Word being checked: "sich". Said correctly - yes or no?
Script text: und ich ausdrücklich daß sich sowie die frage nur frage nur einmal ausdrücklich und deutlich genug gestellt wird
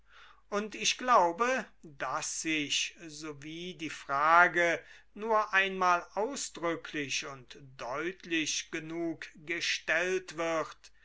yes